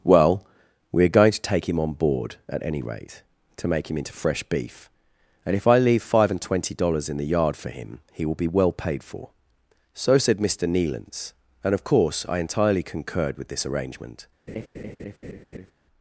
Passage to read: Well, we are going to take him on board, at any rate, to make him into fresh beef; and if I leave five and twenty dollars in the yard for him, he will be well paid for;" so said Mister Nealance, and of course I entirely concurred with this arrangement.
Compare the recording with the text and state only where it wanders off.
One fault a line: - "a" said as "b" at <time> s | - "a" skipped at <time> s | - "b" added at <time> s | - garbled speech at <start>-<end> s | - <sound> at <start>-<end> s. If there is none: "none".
- laugh at 14.5-15.7 s